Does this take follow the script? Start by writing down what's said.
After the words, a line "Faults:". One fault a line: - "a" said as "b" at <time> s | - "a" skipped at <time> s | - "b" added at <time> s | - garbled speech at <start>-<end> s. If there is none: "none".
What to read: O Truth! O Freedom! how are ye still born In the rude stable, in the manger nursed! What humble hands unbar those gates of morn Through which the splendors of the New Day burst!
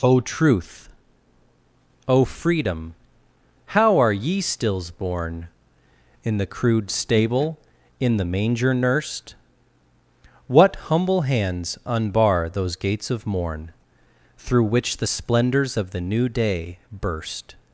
O Truth! O Freedom! how are ye stills born In the crude stable, in the manger nursed! What humble hands unbar those gates of morn Through which the splendors of the New Day burst!
Faults:
- "still" said as "stills" at 4.4 s
- "rude" said as "crude" at 6.5 s